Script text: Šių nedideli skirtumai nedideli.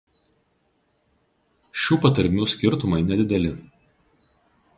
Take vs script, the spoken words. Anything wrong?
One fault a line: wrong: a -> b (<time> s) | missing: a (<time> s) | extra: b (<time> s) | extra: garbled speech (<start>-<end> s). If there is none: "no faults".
wrong: nedideli -> patarmių (2.1 s)